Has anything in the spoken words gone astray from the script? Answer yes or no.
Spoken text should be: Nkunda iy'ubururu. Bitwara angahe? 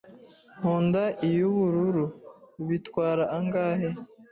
no